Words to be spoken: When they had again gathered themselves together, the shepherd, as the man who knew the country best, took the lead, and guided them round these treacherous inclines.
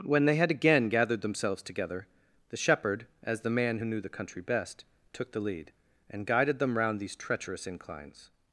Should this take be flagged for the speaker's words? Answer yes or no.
no